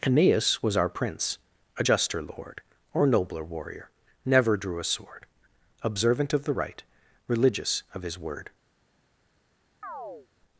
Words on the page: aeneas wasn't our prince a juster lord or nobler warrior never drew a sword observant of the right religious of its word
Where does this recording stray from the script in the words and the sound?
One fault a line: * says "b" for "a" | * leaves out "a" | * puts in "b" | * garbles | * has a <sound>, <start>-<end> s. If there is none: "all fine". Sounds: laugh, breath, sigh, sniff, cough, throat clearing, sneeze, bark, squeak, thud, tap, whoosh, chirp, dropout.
* says "was" for "wasn't"
* says "his" for "its"
* has a chirp, 9.8-10.3 s